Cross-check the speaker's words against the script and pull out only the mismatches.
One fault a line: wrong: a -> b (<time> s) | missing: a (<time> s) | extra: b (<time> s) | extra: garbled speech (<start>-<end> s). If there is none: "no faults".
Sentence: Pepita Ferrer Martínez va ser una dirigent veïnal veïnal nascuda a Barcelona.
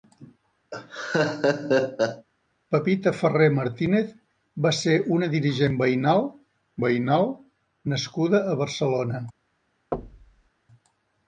no faults